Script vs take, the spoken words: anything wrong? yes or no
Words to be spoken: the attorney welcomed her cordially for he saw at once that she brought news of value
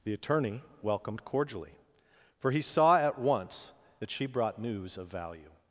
yes